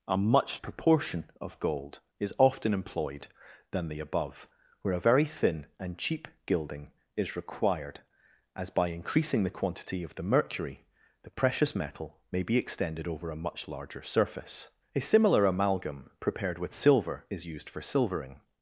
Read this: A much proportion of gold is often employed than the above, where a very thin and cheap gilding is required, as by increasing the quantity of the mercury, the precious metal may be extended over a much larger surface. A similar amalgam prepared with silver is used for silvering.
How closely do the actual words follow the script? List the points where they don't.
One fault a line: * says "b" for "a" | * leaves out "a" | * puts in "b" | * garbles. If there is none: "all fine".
all fine